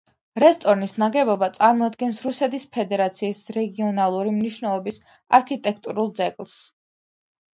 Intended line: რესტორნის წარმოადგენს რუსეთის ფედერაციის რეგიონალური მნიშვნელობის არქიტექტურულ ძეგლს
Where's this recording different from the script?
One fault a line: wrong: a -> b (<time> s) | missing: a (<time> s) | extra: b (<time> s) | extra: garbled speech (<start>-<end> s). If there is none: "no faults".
extra: ნაგებობა (1.0 s)